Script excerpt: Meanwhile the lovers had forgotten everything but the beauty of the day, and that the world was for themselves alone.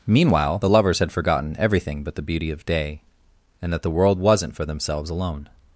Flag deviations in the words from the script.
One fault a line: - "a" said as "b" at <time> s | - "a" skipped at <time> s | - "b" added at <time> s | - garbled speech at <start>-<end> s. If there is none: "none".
- "the" skipped at 2.7 s
- "was" said as "wasn't" at 4.2 s